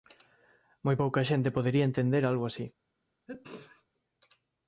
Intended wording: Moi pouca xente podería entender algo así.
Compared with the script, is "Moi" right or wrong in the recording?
right